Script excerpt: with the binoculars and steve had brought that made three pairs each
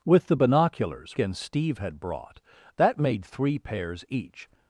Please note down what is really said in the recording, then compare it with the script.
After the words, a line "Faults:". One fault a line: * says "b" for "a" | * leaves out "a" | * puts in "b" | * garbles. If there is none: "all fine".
with the binoculars and steve had brought that made three pairs each
Faults:
all fine